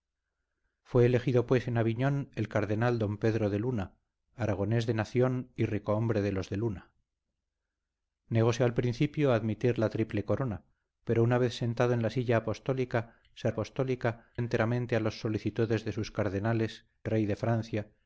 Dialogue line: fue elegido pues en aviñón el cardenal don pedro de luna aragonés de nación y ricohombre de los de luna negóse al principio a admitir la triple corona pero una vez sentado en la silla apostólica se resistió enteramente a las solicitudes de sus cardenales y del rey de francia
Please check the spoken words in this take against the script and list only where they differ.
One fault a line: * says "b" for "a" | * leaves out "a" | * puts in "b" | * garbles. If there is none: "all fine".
* says "apostólica" for "resistió"
* leaves out "y del"